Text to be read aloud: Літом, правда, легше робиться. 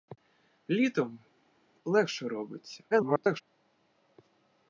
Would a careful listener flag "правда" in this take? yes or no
yes